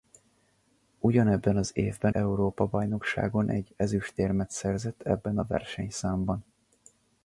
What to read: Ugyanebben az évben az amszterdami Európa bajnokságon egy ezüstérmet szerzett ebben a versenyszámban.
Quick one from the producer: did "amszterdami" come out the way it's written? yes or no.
no